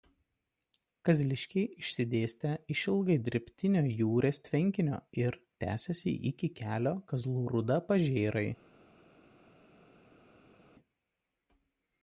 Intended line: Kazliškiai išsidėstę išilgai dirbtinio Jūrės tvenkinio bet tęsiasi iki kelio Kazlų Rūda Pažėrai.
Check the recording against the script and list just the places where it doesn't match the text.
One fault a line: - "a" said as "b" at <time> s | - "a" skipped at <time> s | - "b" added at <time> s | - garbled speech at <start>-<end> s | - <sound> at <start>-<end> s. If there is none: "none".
- "bet" said as "ir" at 5.2 s